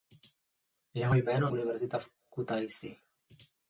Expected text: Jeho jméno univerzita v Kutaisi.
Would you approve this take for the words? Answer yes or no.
yes